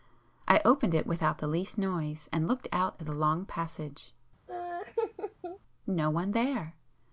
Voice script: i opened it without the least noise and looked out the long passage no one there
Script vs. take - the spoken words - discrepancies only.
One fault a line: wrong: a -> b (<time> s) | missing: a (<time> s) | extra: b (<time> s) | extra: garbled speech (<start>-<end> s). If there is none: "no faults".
no faults